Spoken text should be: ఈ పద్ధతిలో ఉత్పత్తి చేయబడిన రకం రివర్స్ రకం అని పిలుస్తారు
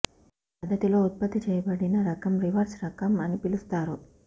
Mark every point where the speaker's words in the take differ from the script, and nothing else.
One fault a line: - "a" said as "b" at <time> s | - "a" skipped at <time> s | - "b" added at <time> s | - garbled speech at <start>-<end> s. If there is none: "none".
none